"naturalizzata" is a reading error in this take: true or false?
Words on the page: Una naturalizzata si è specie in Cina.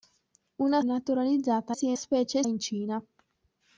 false